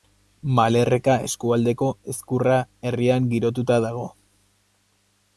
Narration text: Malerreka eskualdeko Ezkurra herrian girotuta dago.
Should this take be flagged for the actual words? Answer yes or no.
no